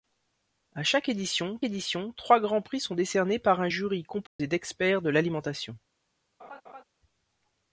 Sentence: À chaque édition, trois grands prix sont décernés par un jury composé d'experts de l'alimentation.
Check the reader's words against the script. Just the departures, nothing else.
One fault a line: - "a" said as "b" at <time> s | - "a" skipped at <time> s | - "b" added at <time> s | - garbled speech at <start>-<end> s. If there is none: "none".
- "édition" added at 1.6 s